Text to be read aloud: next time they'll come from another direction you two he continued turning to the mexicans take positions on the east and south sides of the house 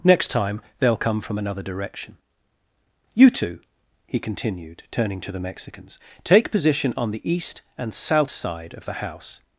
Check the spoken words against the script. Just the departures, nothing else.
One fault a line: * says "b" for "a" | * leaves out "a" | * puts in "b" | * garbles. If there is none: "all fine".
* says "position" for "positions"
* says "side" for "sides"